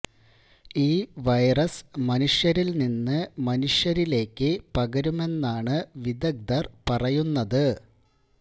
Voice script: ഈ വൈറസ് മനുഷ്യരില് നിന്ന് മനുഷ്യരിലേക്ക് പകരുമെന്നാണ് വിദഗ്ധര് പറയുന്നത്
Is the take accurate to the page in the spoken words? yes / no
yes